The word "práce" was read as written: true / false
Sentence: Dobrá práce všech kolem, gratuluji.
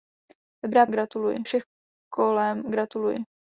false